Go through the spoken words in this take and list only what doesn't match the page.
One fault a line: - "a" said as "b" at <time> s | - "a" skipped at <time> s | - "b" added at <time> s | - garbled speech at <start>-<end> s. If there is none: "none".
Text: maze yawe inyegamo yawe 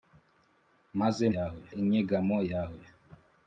none